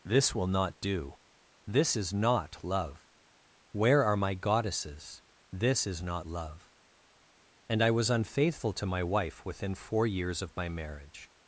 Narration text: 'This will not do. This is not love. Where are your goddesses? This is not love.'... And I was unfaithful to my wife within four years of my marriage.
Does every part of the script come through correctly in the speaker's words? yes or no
no